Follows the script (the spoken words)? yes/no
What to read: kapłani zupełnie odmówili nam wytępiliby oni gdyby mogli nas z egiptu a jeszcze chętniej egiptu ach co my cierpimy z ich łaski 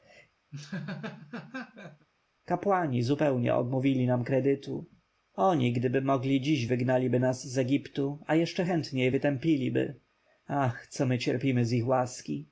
no